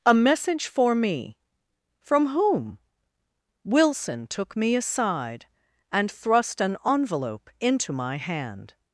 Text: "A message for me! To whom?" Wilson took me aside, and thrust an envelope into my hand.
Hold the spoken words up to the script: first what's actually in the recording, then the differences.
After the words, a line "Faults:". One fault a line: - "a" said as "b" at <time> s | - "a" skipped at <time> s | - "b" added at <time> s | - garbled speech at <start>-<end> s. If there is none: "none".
"A message for me! From whom?" Wilson took me aside, and thrust an envelope into my hand.
Faults:
- "To" said as "From" at 2.0 s